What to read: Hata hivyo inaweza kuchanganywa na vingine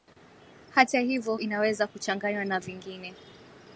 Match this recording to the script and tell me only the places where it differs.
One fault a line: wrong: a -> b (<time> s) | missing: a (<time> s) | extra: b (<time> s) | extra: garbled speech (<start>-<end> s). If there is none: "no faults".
no faults